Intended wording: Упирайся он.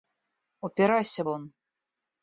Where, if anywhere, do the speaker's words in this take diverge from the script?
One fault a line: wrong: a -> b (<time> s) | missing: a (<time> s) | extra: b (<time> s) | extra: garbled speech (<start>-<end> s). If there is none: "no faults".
no faults